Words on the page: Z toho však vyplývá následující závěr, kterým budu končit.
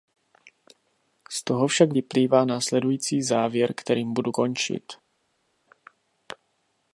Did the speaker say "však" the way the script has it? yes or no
yes